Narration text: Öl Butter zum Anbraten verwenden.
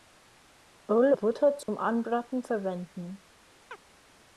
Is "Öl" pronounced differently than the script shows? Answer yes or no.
no